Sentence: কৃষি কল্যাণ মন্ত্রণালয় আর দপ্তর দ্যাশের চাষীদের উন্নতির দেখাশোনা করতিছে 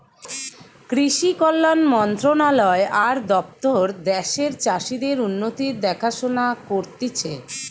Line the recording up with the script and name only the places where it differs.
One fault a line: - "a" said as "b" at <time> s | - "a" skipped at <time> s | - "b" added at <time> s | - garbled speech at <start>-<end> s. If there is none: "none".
none